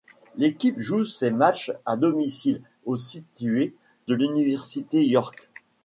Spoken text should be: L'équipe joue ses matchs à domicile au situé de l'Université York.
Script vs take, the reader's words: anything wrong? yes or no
no